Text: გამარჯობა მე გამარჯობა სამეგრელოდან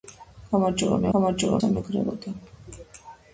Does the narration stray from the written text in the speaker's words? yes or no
no